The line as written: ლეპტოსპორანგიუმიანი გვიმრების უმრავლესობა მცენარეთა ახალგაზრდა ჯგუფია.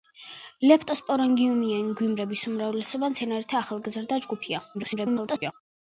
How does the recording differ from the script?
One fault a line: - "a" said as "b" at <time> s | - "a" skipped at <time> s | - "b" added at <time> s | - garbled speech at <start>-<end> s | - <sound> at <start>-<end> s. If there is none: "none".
- garbled speech at 4.7-5.5 s